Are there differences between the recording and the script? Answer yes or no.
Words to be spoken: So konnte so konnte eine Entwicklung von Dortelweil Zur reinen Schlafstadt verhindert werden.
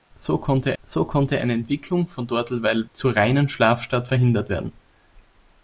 no